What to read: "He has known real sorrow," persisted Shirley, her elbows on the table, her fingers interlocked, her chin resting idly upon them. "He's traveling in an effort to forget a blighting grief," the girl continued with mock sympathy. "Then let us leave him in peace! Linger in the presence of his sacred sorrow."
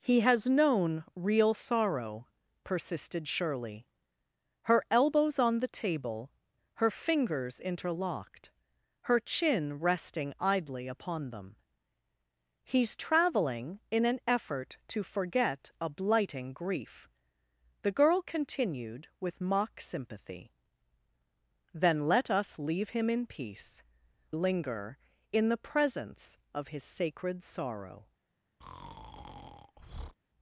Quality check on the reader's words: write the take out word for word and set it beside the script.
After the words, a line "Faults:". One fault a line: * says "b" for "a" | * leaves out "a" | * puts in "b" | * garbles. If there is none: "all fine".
"He has known real sorrow," persisted Shirley, her elbows on the table, her fingers interlocked, her chin resting idly upon them. "He's traveling in an effort to forget a blighting grief," the girl continued with mock sympathy. "Then let us leave him in peace! Linger in the presence of his sacred sorrow."
Faults:
all fine